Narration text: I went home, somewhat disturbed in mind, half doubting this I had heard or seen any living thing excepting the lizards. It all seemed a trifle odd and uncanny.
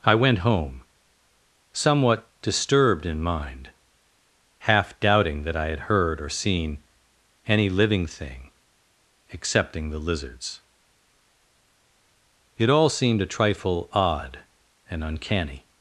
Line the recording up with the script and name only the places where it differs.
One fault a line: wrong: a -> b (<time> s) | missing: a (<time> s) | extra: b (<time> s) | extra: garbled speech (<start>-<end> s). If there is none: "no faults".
wrong: this -> that (5.4 s)